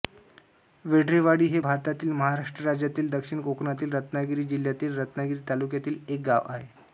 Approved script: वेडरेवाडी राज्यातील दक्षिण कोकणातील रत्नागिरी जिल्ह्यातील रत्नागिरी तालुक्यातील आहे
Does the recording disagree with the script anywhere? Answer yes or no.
yes